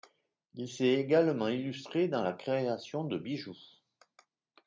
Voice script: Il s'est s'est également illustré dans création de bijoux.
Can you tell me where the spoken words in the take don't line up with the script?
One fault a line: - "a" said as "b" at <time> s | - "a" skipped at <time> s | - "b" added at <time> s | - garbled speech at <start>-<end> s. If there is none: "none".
- "s'est" skipped at 0.9 s
- "la" added at 2.2 s